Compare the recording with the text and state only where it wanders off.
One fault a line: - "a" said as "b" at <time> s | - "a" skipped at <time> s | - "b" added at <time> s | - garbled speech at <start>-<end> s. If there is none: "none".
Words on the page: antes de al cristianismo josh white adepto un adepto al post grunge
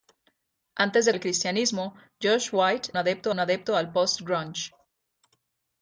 none